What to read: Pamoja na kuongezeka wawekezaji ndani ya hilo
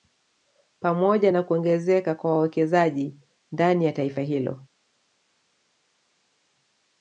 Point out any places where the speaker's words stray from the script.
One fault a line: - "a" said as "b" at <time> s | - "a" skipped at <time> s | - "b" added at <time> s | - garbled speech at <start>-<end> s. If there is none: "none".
- "kwa" added at 2.1 s
- "taifa" added at 3.9 s